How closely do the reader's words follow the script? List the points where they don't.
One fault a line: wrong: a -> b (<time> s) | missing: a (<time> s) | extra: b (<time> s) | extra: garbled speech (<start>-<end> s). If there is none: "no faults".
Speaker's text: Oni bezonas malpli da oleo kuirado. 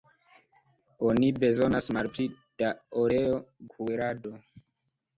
no faults